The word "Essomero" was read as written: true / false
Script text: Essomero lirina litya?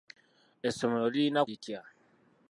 true